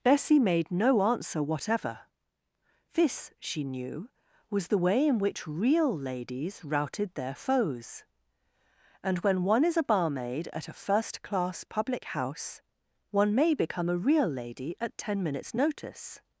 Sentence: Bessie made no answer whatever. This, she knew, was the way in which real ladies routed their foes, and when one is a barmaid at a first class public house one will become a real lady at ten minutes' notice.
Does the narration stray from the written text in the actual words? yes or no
yes